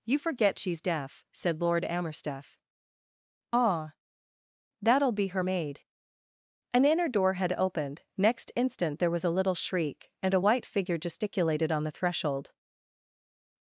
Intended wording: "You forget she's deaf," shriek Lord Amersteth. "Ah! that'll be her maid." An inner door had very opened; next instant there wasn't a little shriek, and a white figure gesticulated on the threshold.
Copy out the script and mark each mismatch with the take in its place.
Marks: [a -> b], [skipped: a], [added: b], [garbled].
"You forget she's deaf," [shriek -> said] Lord Amersteth. "Ah! that'll be her maid." An inner door had [skipped: very] opened; next instant there [wasn't -> was] a little shriek, and a white figure gesticulated on the threshold.